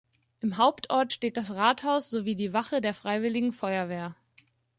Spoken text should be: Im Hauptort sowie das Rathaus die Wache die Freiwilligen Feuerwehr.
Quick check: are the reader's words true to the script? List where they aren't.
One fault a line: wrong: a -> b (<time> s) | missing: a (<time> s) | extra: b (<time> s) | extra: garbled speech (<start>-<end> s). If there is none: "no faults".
wrong: sowie -> steht (1.1 s)
extra: sowie (2.1 s)
wrong: die -> der (2.8 s)